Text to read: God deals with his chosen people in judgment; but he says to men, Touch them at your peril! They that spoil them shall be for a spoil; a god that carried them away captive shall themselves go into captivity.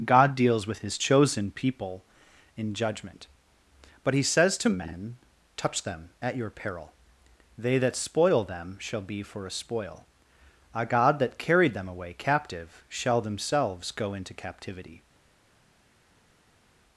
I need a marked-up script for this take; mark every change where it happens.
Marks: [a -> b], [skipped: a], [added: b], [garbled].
God deals with his chosen people in judgment; but he says to men, Touch them at your peril! They that spoil them shall be for a spoil; a god that carried them away captive shall themselves go into captivity.